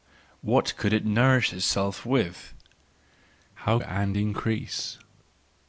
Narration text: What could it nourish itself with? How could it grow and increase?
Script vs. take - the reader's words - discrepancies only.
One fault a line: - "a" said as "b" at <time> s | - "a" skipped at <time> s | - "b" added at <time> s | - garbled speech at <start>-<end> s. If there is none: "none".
- "could it grow" skipped at 3.8 s